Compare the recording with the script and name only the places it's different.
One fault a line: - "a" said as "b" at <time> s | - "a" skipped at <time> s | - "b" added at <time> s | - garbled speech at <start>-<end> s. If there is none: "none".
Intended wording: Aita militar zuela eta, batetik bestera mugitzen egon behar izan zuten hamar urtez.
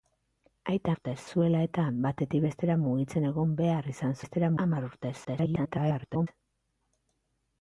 - "militar" said as "urtez" at 0.9 s
- "zuten" said as "bestera" at 4.2 s
- garbled speech at 5.2-6.3 s